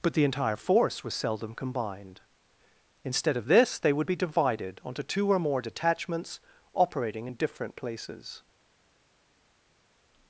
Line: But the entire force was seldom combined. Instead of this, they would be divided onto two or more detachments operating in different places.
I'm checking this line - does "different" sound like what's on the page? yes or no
yes